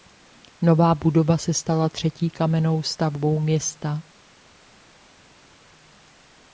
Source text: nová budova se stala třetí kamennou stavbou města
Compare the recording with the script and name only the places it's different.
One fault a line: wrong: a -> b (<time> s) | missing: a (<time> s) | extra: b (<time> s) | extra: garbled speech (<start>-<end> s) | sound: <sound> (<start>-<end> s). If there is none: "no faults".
no faults